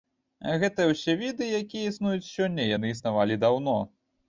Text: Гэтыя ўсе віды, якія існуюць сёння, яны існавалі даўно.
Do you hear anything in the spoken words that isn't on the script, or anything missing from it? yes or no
no